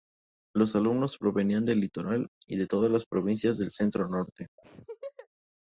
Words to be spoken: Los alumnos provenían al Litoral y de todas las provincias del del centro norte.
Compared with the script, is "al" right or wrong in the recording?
wrong